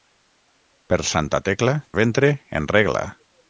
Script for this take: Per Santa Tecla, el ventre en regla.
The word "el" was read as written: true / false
false